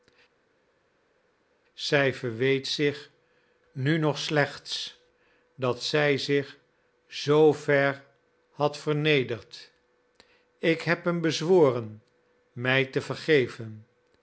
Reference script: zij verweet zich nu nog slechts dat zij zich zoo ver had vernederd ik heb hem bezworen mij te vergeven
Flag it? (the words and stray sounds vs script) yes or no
no